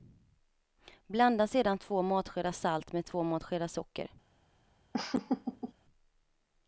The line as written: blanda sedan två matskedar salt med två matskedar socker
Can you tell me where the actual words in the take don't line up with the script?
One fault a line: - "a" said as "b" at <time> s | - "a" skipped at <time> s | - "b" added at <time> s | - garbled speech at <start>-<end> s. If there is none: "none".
none